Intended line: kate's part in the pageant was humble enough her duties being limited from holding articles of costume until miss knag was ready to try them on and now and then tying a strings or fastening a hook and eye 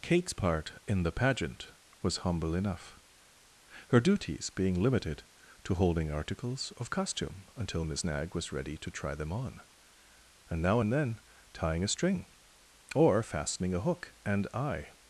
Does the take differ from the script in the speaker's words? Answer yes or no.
yes